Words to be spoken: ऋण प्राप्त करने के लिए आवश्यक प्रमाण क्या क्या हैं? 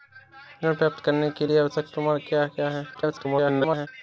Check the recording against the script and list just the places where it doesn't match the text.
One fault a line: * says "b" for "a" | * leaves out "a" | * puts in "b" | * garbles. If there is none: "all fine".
* garbles